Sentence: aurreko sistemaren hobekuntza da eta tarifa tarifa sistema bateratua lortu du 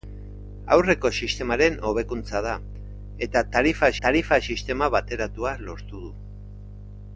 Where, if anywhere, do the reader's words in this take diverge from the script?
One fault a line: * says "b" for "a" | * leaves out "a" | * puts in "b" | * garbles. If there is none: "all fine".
all fine